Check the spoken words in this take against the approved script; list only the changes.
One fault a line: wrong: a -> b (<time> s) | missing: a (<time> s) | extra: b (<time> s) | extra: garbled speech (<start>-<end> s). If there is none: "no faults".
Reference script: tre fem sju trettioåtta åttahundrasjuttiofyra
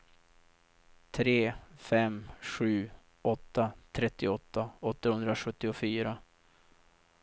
extra: åtta (3.2 s)